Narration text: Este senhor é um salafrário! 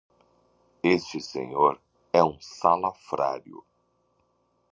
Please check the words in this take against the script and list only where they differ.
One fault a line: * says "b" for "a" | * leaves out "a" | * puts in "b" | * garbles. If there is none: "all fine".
all fine